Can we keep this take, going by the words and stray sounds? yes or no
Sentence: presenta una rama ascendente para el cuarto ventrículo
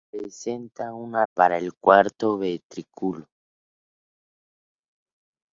no